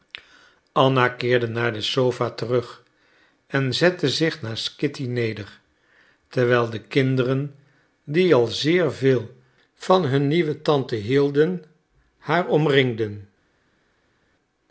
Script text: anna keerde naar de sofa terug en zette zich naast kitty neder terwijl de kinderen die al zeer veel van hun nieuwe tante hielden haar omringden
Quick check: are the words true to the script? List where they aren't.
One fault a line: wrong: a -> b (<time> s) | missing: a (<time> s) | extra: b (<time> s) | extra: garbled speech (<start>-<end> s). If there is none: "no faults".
no faults